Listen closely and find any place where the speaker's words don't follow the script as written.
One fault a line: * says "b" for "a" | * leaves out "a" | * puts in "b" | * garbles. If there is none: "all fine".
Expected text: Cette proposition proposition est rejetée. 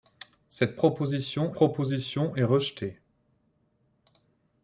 all fine